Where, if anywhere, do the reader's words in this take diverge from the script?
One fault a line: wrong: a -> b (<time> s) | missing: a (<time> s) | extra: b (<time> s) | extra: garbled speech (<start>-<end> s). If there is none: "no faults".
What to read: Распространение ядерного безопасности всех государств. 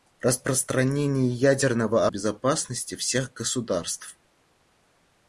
no faults